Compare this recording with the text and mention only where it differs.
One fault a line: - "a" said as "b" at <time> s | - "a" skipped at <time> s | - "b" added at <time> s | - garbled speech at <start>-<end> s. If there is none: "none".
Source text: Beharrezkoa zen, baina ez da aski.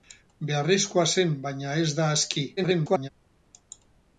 - garbled speech at 2.6-3.1 s